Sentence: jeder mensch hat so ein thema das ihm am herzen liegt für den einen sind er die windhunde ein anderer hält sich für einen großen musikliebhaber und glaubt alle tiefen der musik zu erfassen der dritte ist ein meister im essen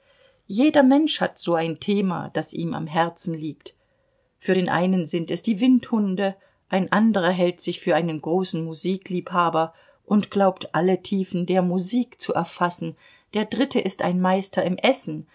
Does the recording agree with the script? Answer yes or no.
no